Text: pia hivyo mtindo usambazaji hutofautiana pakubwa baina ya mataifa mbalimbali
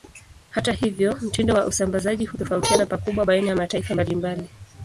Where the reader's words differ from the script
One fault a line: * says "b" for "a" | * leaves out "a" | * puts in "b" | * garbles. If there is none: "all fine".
* says "hata" for "pia"
* puts in "wa"